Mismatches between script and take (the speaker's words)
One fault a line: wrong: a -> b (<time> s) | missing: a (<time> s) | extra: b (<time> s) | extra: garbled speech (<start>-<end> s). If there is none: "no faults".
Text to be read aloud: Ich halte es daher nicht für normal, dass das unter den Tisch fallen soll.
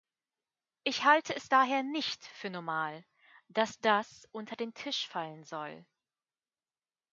no faults